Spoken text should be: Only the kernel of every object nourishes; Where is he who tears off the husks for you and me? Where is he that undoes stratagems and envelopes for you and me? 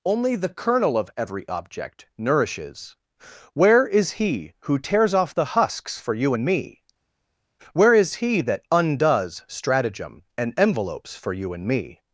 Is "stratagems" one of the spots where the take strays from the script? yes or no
yes